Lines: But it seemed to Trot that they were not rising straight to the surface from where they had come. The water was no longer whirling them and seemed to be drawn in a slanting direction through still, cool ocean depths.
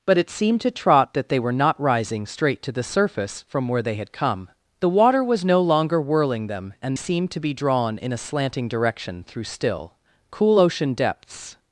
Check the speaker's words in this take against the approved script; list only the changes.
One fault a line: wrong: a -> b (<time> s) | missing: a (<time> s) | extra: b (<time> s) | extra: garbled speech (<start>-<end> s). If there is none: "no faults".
no faults